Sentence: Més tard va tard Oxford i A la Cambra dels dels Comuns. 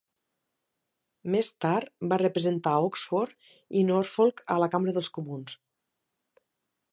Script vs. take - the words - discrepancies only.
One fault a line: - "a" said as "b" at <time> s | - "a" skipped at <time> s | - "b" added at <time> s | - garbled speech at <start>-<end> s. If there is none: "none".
- "tard" said as "representar" at 2.2 s
- "Norfolk" added at 3.9 s
- "dels" skipped at 5.1 s